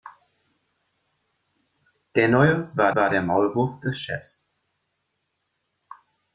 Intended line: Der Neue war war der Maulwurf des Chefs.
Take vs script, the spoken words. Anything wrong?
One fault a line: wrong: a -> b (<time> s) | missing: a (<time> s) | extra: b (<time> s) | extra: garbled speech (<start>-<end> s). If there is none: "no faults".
no faults